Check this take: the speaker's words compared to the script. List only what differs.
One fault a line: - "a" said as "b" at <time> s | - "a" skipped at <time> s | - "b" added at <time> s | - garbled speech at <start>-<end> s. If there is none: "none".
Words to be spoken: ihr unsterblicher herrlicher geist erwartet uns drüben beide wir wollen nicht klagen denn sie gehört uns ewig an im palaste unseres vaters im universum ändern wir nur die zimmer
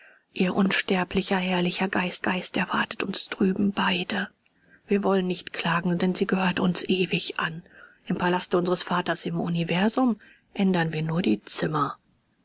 - "geist" added at 2.2 s